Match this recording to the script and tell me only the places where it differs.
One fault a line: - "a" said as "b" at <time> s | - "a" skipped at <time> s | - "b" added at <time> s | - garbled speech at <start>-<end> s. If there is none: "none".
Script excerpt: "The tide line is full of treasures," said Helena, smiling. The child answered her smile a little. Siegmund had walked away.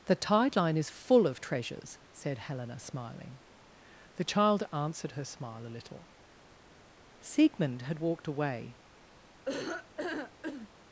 none